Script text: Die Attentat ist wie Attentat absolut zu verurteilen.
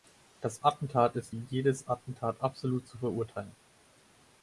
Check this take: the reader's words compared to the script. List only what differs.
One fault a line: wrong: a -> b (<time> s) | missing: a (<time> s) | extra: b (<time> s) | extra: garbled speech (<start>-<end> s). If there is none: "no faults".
wrong: Die -> Das (0.4 s)
extra: jedes (1.5 s)